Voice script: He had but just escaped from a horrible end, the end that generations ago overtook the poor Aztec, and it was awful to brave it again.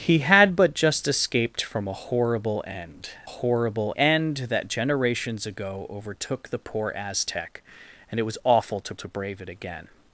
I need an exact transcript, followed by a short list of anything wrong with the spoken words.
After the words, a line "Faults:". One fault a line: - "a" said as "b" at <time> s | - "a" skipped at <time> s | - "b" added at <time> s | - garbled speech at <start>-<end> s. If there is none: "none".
He had but just escaped from a horrible end, horrible end that generations ago overtook the poor Aztec, and it was awful to to brave it again.
Faults:
- "the" said as "horrible" at 3.2 s
- "to" added at 9.0 s